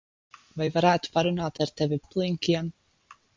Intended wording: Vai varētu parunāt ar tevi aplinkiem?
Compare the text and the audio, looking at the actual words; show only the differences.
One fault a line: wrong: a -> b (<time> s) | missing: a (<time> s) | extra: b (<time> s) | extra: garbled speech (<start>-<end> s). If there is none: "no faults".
no faults